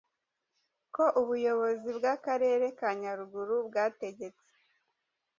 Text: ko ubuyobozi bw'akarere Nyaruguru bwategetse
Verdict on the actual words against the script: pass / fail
fail